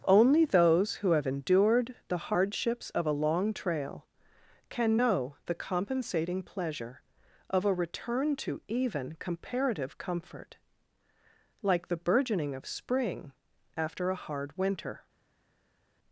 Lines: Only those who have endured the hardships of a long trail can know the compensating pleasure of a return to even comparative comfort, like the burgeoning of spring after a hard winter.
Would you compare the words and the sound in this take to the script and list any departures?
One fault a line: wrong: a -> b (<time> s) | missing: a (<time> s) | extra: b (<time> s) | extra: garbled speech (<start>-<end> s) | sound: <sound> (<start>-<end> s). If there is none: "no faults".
no faults